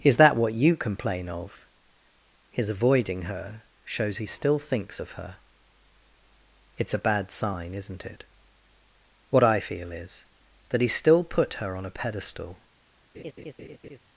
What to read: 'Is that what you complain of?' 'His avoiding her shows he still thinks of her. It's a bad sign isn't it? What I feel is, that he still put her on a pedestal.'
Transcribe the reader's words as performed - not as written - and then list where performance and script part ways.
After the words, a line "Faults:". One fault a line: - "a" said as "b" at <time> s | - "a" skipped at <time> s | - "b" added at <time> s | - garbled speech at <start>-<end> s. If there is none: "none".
'Is that what you complain of?' 'His avoiding her shows he still thinks of her. It's a bad sign isn't it? What I feel is, that he still put her on a pedestal.'
Faults:
none